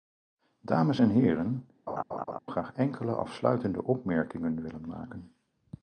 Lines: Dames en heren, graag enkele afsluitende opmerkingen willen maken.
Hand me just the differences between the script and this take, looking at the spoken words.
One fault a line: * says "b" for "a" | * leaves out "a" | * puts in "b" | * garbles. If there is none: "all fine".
all fine